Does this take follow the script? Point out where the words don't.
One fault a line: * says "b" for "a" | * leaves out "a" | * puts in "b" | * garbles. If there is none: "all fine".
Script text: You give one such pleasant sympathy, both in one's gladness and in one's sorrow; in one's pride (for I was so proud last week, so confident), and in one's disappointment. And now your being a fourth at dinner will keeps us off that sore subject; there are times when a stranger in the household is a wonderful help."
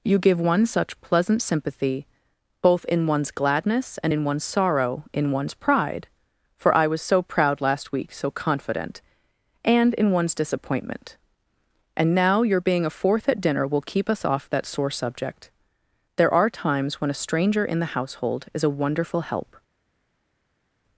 * says "keep" for "keeps"